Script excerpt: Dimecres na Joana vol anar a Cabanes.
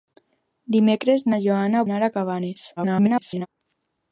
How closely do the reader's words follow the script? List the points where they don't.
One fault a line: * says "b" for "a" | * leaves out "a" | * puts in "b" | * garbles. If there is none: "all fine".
* leaves out "vol"
* garbles